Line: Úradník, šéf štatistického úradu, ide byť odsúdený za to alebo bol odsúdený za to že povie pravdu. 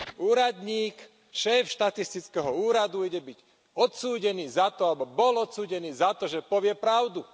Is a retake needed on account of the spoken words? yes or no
no